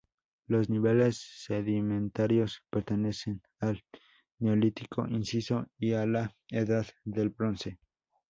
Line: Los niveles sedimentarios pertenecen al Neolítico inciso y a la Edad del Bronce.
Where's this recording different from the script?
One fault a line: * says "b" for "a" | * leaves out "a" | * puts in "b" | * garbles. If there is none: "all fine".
all fine